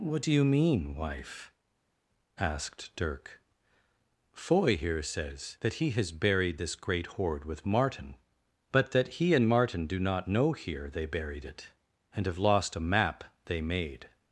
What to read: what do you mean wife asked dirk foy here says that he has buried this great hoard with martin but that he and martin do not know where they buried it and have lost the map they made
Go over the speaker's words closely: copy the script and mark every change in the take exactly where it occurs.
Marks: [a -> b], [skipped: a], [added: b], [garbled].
what do you mean wife asked dirk foy here says that he has buried this great hoard with martin but that he and martin do not know [where -> here] they buried it and have lost [the -> a] map they made